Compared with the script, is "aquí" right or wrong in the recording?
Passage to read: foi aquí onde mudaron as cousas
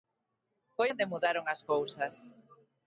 wrong